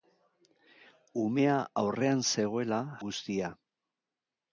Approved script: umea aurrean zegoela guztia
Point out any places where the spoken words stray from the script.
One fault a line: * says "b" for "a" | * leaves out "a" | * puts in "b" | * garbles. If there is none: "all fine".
all fine